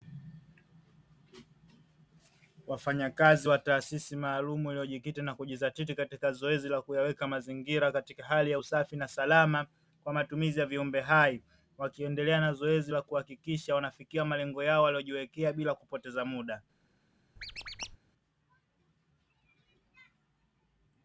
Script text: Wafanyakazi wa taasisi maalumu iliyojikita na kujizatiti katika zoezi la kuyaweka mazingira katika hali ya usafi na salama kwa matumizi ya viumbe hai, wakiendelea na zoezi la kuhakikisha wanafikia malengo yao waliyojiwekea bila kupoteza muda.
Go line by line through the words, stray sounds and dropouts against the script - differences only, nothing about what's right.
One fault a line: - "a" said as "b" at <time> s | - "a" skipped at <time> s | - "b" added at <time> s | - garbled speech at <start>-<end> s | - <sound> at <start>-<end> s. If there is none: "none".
- squeak at 17.4-18.0 s